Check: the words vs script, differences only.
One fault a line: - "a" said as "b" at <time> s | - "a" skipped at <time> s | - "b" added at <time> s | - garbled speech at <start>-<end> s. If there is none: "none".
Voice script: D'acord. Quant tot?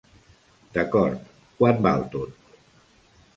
- "val" added at 1.9 s